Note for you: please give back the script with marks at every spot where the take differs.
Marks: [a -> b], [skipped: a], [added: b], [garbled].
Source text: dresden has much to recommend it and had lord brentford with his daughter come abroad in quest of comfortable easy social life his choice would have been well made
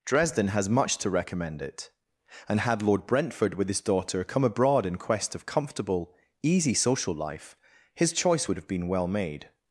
dresden has much to recommend it and had lord brentford with his daughter come abroad in quest of comfortable easy social life his choice would have been well made